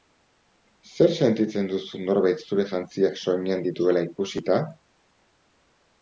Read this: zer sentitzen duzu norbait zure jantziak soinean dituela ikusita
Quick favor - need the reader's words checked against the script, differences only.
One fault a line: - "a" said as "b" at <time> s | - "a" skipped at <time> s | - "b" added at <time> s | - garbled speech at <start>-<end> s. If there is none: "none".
none